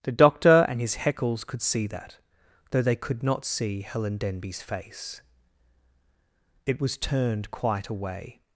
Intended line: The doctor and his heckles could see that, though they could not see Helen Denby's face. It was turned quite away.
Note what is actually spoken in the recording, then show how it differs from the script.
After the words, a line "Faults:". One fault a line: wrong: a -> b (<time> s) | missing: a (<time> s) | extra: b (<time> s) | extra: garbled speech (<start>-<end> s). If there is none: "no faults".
The doctor and his heckles could see that, though they could not see Helen Denby's face. It was turned quite away.
Faults:
no faults